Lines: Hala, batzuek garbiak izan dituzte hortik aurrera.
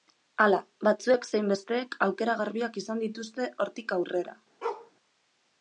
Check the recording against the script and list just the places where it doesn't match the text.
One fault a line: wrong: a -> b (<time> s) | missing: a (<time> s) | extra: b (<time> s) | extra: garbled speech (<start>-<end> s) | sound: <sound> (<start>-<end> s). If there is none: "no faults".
extra: zein besteek aukera (1.3 s)
sound: bark (4.6-4.9 s)